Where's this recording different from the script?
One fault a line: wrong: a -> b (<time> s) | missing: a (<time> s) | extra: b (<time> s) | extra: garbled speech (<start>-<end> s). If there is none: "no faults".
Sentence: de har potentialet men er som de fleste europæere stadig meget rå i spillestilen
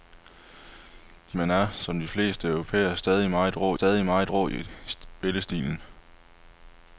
missing: har potentialet (1.4 s)
extra: stadig meget rå (3.7 s)